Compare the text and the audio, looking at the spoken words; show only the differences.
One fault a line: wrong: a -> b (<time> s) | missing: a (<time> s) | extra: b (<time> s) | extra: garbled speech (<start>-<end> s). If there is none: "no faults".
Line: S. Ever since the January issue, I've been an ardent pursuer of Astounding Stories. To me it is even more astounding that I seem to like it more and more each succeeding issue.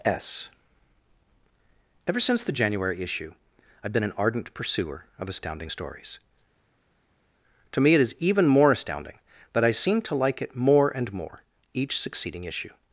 no faults